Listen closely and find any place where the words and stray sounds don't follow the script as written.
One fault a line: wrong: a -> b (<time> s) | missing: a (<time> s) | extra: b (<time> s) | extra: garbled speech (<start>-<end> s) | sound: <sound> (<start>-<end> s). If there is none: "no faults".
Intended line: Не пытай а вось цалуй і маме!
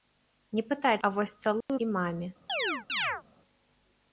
sound: dropout (1.6-1.7 s)
sound: chirp (2.5-3.2 s)